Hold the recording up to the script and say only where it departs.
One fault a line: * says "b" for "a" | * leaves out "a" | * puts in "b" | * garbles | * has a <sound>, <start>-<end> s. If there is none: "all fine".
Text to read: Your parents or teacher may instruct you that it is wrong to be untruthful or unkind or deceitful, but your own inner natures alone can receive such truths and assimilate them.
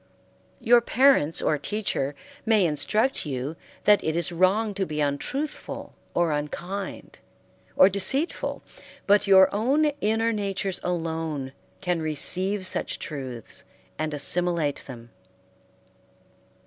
all fine